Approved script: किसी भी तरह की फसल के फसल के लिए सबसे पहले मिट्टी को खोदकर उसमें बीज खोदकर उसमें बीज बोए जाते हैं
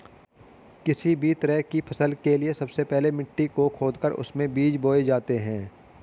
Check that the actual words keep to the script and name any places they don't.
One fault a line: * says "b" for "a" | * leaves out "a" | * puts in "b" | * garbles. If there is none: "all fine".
* leaves out "फसल के"
* leaves out "खोदकर उसमें बीज"